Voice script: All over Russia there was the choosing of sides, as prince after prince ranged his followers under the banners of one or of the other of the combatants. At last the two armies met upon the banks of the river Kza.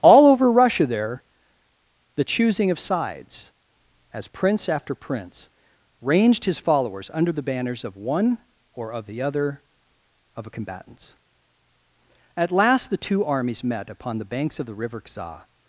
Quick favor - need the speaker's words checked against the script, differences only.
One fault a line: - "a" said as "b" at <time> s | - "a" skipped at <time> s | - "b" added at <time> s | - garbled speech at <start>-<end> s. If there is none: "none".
- "was" skipped at 1.2 s
- "the" said as "a" at 10.4 s